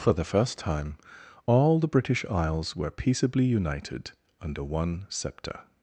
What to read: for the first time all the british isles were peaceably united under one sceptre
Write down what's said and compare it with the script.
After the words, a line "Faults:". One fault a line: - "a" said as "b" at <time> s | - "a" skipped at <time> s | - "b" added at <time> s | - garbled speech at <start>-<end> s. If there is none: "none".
for the first time all the british isles were peaceably united under one sceptre
Faults:
none